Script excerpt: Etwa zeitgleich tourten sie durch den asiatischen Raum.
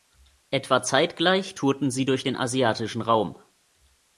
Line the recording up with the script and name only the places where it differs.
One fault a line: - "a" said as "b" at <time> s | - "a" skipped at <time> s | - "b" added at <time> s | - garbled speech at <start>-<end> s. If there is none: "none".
none